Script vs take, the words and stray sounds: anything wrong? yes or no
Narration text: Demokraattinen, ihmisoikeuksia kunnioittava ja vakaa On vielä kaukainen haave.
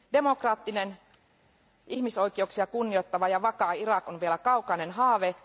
yes